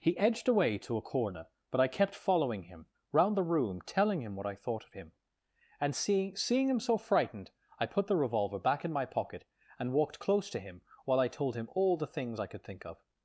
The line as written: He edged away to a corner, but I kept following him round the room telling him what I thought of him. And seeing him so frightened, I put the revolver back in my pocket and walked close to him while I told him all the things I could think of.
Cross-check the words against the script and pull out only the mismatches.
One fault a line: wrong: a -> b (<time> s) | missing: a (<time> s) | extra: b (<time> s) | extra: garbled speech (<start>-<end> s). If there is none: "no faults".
extra: seeing (6.4 s)